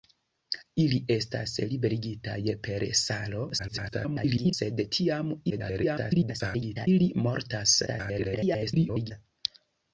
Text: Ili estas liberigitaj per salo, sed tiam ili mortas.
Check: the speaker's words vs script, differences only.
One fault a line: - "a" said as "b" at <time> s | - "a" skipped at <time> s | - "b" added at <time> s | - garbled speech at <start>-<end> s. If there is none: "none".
- garbled speech at 3.6-4.5 s
- garbled speech at 5.5-6.9 s
- garbled speech at 7.9-9.1 s